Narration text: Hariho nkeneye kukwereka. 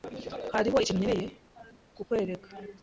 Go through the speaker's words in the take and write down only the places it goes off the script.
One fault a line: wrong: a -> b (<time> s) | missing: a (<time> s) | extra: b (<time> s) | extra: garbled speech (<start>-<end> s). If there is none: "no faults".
extra: ikintu (0.8 s)